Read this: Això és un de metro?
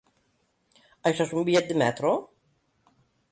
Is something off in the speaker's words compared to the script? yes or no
yes